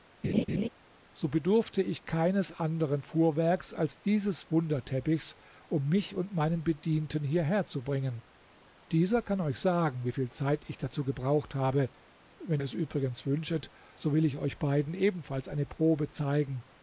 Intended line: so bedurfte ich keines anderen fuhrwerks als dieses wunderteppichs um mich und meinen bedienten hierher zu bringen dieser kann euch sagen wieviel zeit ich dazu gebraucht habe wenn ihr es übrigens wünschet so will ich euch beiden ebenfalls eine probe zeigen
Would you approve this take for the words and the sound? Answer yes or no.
no